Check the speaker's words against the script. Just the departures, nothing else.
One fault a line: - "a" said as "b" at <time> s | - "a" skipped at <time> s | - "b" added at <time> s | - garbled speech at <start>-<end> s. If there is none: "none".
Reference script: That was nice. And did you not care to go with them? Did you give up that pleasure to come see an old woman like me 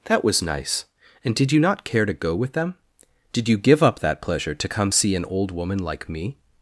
none